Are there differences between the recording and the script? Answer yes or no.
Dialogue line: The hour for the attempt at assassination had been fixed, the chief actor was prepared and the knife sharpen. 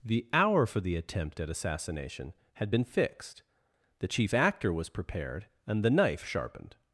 yes